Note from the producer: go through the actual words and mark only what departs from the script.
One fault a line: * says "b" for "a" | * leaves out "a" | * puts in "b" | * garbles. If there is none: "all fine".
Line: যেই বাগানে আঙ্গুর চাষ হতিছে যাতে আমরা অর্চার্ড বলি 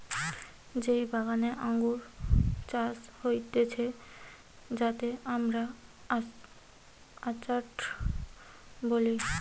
all fine